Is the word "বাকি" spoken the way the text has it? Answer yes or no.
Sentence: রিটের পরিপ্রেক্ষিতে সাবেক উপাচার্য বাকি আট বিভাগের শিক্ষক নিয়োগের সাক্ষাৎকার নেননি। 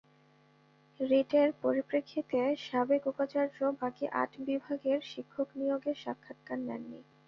yes